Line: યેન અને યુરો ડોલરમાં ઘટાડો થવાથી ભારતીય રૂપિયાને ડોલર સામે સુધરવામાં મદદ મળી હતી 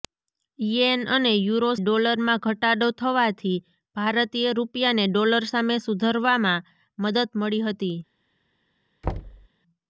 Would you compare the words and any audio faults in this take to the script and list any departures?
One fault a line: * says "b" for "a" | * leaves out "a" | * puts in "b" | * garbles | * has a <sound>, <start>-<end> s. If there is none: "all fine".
* has a thud, 9.0-9.5 s